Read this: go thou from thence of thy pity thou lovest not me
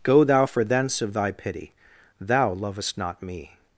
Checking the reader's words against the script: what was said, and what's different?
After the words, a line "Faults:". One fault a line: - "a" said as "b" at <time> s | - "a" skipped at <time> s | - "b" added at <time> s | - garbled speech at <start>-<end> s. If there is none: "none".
go thou for thence of thy pity thou lovest not me
Faults:
- "from" said as "for" at 0.4 s